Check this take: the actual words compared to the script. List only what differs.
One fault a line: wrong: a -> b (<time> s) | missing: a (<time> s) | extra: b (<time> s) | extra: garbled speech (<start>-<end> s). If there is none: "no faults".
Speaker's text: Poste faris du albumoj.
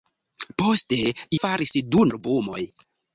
no faults